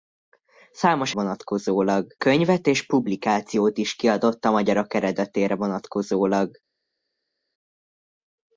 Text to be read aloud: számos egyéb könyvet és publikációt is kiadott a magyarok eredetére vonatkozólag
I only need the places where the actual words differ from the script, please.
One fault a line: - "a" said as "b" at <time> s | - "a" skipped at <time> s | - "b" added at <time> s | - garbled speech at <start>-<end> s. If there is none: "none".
- "egyéb" said as "vonatkozólag" at 1.1 s